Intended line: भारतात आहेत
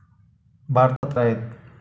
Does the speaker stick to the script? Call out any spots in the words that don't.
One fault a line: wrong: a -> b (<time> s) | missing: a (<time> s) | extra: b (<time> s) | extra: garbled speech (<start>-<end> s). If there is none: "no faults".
no faults